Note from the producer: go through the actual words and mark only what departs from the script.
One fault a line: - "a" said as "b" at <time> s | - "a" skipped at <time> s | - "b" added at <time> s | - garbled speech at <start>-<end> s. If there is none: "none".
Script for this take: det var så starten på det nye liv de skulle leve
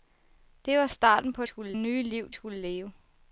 - "så" skipped at 0.9 s
- "det" said as "skulle" at 1.5 s
- "de" skipped at 2.3 s